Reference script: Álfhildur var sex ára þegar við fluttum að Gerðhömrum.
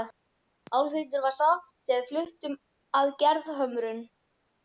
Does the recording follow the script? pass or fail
fail